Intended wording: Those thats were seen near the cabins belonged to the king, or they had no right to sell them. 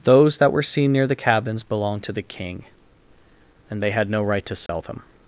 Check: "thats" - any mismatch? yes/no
yes